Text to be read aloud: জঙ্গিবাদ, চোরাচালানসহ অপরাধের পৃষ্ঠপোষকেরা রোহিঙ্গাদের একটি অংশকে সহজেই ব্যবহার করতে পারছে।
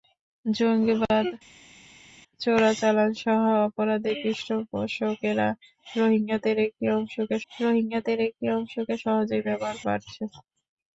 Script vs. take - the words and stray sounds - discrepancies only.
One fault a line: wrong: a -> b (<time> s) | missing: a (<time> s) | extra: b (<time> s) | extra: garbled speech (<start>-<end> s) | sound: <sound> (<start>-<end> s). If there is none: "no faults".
extra: রোহিঙ্গাদের একটি অংশকে (7.5 s)
missing: করতে (9.8 s)